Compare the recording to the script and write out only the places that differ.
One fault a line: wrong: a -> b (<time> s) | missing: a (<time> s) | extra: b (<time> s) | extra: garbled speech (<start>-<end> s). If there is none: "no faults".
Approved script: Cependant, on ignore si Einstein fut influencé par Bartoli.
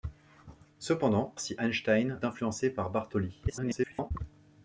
missing: on ignore (1.4 s)
missing: fut (2.2 s)
extra: garbled speech (3.5-4.1 s)